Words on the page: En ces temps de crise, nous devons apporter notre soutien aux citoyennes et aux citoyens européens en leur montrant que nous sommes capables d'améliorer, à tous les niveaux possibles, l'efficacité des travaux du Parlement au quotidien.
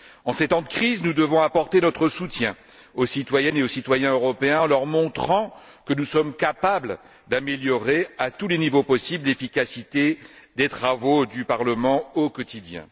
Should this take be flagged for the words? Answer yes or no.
no